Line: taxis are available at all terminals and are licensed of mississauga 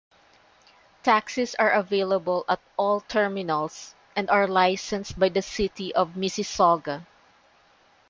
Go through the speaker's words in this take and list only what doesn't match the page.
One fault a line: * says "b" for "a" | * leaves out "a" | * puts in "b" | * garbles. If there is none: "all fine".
* puts in "by the city"